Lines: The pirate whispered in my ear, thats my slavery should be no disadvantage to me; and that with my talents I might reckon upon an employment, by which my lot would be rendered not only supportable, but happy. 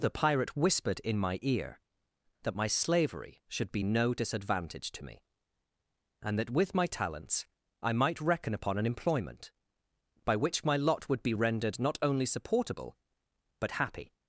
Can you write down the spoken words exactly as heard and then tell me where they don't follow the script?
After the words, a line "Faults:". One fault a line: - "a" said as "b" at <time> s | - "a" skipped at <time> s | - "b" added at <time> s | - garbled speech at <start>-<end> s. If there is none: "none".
The pirate whispered in my ear, that my slavery should be no disadvantage to me; and that with my talents I might reckon upon an employment, by which my lot would be rendered not only supportable, but happy.
Faults:
- "thats" said as "that" at 2.4 s